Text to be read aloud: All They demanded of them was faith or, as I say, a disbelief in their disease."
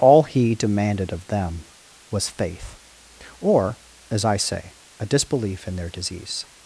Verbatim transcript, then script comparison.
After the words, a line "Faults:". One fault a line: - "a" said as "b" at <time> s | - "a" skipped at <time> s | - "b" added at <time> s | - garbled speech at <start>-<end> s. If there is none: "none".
All He demanded of them was faith or, as I say, a disbelief in their disease."
Faults:
- "They" said as "He" at 0.2 s